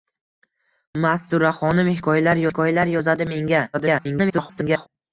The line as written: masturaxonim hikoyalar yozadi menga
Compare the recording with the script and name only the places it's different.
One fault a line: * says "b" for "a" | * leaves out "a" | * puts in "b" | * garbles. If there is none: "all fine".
* puts in "hikoyalar"
* garbles